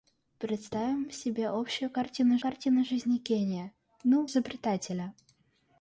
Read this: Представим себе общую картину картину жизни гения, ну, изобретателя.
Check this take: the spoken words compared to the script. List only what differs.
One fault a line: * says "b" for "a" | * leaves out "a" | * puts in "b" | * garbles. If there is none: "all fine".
all fine